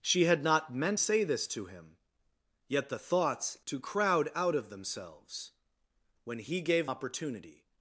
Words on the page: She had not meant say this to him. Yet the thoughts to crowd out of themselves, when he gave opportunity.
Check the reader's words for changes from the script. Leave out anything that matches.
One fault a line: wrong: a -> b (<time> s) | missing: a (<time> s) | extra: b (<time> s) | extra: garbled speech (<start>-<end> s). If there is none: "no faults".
no faults